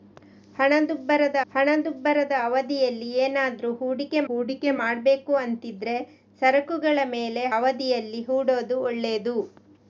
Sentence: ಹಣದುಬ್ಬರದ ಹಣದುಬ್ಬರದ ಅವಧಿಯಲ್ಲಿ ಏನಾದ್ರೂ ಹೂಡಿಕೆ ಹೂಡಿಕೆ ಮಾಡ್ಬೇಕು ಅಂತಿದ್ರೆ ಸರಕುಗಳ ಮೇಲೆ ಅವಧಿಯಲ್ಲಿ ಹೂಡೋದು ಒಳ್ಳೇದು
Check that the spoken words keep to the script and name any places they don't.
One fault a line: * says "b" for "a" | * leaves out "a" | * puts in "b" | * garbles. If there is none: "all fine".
all fine